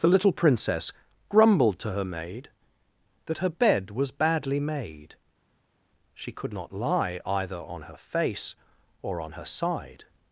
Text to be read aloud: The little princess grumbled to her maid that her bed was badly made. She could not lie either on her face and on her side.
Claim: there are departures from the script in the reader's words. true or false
true